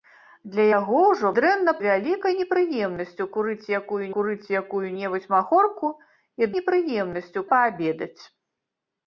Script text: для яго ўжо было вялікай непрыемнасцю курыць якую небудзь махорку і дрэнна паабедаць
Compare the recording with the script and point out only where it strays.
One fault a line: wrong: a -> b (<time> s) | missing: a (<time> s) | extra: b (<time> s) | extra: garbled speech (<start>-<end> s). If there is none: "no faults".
wrong: было -> дрэнна (1.4 s)
extra: курыць якую (4.2 s)
wrong: дрэнна -> непрыемнасцю (6.6 s)